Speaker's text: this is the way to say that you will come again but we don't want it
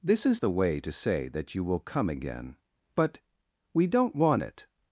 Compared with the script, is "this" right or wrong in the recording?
right